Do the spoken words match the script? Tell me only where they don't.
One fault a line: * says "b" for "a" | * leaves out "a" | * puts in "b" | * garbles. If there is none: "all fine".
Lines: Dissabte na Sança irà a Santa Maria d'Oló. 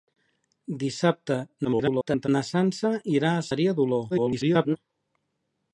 * garbles
* leaves out "Santa"
* garbles